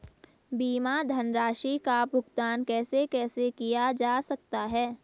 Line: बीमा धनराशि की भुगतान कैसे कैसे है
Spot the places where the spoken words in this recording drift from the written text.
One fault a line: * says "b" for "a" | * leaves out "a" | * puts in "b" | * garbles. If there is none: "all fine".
* says "का" for "की"
* puts in "किया जा सकता"